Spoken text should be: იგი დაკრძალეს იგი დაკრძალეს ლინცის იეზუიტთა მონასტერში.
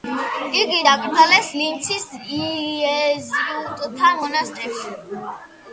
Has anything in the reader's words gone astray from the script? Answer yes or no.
yes